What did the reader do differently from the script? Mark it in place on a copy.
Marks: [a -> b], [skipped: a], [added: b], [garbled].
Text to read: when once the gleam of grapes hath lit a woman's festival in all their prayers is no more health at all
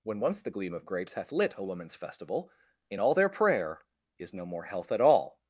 when once the gleam of grapes hath lit a woman's festival in all their [prayers -> prayer] is no more health at all